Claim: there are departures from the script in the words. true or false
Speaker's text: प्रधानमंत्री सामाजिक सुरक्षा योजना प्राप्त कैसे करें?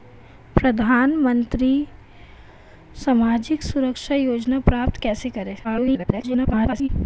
true